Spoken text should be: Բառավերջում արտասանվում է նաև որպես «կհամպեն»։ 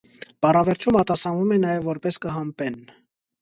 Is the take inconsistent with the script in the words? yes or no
no